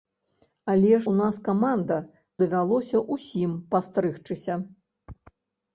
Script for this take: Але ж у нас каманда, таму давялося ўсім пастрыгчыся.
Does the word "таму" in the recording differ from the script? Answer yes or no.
yes